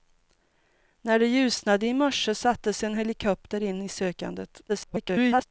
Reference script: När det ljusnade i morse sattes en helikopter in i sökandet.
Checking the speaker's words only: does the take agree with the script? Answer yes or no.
no